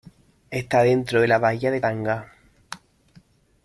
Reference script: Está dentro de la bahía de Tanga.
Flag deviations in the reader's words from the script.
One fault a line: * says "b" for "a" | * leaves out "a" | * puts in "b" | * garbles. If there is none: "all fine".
all fine